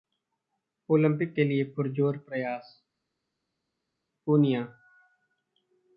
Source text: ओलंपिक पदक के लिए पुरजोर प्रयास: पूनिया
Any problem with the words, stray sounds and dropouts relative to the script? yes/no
yes